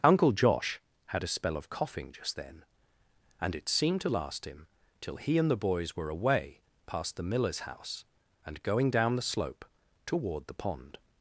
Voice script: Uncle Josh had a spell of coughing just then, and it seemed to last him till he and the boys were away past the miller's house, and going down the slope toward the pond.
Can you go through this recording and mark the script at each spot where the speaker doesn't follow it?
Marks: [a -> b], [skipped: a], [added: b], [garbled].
Uncle Josh had a spell of coughing just then, and it seemed to last him till he and the boys were away past the miller's house, and going down the slope toward the pond.